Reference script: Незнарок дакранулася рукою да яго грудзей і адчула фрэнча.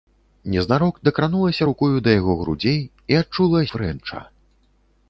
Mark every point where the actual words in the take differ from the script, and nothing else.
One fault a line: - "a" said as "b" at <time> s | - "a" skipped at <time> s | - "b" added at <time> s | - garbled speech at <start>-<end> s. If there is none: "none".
none